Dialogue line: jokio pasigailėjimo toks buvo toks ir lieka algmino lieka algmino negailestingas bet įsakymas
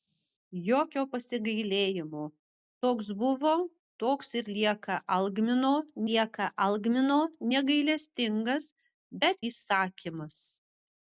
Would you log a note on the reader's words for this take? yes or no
no